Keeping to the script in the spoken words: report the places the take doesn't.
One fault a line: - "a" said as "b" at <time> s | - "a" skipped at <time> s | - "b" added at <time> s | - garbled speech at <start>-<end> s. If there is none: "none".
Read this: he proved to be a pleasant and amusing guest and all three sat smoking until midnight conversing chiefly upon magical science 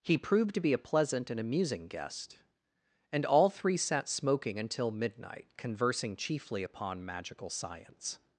none